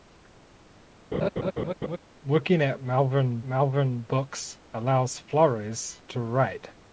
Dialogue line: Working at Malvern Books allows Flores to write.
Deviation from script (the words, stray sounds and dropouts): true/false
true